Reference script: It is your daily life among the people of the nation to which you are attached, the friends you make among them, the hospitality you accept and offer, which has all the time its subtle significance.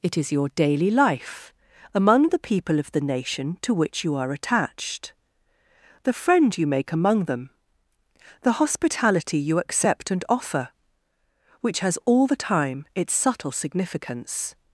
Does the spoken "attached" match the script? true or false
true